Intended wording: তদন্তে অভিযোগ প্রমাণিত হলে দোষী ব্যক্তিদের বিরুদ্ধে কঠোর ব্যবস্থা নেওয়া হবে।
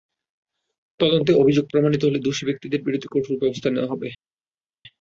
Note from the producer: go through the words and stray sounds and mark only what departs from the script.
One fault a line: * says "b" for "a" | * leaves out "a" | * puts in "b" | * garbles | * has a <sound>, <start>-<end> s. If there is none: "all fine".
all fine